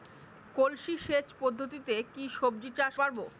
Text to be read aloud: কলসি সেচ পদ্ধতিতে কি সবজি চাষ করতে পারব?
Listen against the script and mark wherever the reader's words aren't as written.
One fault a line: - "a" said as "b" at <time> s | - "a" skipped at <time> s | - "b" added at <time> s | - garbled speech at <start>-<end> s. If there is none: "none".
- "করতে" skipped at 2.9 s